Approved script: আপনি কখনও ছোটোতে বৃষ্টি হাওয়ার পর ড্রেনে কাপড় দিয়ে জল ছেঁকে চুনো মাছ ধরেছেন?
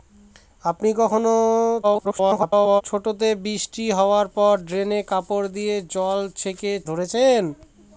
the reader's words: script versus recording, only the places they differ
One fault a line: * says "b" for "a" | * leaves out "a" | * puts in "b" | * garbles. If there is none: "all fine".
* garbles
* leaves out "চুনো মাছ"